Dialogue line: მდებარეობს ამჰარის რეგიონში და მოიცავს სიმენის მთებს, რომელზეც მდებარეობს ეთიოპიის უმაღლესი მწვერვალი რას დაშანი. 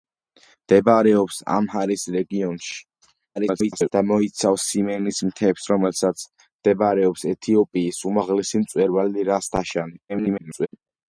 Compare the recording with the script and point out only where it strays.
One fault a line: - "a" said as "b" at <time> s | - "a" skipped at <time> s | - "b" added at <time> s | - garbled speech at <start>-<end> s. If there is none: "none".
- garbled speech at 3.4-3.9 s
- garbled speech at 10.1-10.7 s